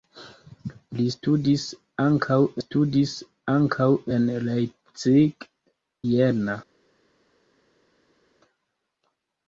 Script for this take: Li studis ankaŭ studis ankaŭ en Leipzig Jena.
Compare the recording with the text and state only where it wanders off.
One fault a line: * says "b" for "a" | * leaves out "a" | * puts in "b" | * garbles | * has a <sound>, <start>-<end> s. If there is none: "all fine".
all fine